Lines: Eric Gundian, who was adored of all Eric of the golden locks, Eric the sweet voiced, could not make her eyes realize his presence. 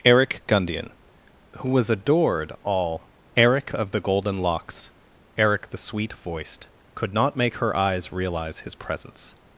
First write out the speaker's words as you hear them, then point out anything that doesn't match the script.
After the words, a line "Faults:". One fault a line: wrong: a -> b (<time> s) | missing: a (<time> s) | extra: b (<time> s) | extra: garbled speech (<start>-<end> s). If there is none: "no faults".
Eric Gundian, who was adored all Eric of the golden locks, Eric the sweet voiced, could not make her eyes realize his presence.
Faults:
missing: of (2.5 s)